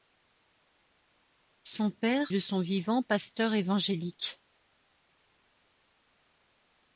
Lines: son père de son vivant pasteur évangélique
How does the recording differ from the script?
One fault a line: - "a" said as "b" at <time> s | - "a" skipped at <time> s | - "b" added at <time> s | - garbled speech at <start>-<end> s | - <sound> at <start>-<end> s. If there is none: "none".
none